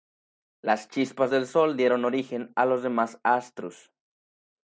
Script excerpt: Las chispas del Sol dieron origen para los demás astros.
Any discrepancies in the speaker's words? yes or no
yes